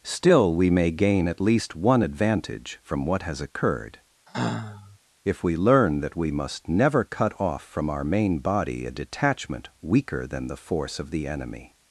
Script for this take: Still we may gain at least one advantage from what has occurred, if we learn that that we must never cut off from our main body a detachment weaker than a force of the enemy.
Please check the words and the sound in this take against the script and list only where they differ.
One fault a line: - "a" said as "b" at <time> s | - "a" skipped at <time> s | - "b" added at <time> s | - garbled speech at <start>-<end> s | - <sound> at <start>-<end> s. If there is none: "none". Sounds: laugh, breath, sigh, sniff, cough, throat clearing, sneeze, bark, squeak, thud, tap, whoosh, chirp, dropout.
- sigh at 4.3-5.0 s
- "that" skipped at 6.1 s
- "a" said as "the" at 10.5 s